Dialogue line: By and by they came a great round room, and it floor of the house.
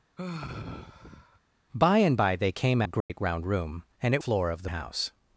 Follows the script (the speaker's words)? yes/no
yes